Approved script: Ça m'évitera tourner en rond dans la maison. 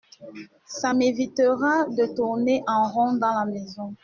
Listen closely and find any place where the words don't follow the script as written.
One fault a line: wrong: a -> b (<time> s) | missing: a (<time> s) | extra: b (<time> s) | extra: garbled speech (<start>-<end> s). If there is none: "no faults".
extra: de (1.9 s)